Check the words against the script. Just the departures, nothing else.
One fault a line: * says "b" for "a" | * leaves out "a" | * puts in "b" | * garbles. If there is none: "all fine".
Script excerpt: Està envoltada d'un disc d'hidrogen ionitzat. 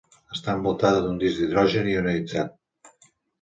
all fine